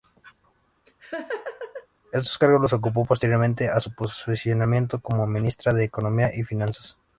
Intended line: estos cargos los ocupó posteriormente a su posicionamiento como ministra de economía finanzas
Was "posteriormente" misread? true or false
false